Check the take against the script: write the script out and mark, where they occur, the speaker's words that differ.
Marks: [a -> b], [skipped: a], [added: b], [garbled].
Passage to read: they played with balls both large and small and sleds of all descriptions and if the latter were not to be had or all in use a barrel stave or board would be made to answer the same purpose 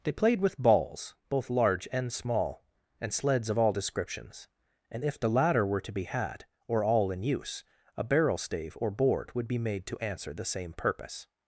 they played with balls both large and small and sleds of all descriptions and if the latter were [skipped: not] to be had or all in use a barrel stave or board would be made to answer the same purpose